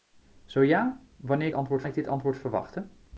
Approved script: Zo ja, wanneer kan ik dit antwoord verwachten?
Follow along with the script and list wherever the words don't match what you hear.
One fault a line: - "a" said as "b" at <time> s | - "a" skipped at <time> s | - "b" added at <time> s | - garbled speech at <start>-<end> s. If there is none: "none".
- "kan" said as "antwoord" at 1.5 s